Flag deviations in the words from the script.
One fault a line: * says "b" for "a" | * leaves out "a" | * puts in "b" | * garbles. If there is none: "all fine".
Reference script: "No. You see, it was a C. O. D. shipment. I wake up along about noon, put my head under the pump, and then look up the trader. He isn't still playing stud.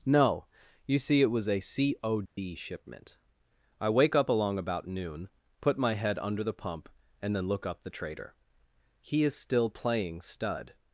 * says "is" for "isn't"